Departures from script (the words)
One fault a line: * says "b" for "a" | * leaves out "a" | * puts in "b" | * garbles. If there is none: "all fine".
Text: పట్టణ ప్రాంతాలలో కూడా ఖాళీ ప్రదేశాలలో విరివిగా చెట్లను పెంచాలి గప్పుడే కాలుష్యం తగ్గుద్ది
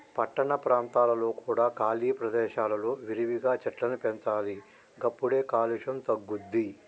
all fine